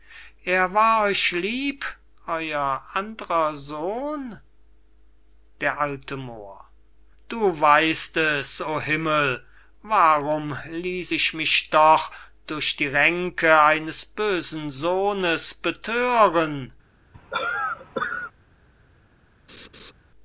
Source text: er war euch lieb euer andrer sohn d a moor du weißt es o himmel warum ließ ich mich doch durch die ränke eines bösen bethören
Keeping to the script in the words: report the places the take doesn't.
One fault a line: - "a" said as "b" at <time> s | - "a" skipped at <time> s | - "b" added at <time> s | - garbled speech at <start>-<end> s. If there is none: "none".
- "sohnes" added at 14.7 s